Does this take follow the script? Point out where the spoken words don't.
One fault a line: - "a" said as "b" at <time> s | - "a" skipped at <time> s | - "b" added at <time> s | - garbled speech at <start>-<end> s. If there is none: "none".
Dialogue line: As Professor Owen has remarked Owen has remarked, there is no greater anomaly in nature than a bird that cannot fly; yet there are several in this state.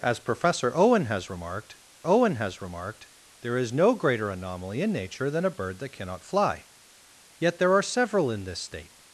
none